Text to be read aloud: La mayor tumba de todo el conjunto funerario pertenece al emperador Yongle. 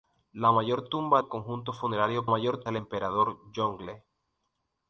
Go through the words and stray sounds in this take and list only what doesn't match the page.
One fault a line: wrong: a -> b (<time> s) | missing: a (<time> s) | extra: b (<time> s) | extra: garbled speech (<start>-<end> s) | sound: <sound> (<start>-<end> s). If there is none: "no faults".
missing: de todo (1.2 s)
wrong: pertenece -> mayor (2.3 s)